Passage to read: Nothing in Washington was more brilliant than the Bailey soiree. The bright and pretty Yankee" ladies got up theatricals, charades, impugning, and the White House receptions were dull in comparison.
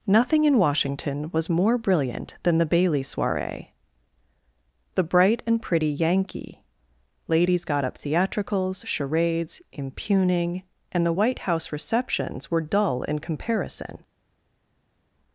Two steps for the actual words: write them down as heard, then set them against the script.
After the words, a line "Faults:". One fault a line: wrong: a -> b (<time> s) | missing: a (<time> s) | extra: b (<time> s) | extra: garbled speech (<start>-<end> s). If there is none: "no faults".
Nothing in Washington was more brilliant than the Bailey soiree. The bright and pretty Yankee" ladies got up theatricals, charades, impugning, and the White House receptions were dull in comparison.
Faults:
no faults